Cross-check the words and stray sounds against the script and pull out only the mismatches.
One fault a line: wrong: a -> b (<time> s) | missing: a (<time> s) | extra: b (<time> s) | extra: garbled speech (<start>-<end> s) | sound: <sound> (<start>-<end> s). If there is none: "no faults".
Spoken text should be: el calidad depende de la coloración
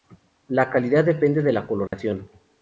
wrong: el -> la (0.5 s)
sound: dropout (1.9-1.9 s)